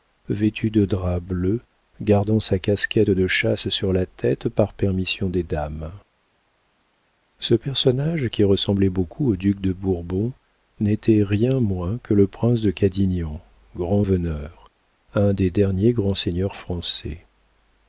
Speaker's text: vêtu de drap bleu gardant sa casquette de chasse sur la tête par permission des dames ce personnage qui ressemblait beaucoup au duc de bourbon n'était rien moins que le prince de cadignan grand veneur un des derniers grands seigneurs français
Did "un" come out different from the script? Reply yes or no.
no